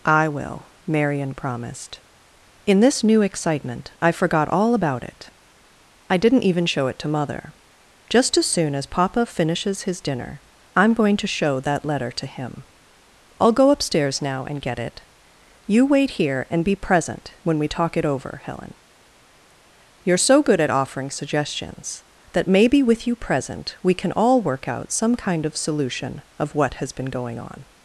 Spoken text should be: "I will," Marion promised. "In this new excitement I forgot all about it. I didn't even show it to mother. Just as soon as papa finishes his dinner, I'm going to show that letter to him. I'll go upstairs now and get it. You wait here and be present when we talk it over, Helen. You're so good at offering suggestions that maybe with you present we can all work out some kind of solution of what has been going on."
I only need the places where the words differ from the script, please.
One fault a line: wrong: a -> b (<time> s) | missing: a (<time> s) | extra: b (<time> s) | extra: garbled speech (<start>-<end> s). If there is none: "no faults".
no faults